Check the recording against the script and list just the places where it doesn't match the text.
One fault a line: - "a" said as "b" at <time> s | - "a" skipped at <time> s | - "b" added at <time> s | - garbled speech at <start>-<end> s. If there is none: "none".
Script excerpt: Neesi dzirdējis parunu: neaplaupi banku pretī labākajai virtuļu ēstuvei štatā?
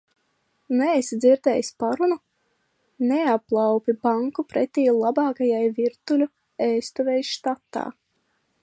none